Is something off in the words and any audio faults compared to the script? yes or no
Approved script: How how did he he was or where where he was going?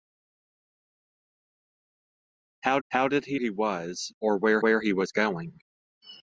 no